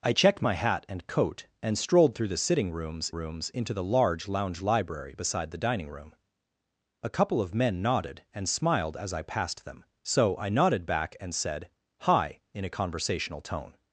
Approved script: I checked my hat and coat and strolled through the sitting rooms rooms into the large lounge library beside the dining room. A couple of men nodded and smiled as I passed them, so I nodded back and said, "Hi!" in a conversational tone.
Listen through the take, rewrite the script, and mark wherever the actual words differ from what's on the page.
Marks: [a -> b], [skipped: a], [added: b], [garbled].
I checked my hat and coat and strolled through the sitting rooms rooms into the large lounge library beside the dining room. A couple of men nodded and smiled as I passed them, so I nodded back and said, "Hi!" in a conversational tone.